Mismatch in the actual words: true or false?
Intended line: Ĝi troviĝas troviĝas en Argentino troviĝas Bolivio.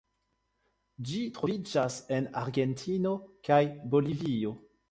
true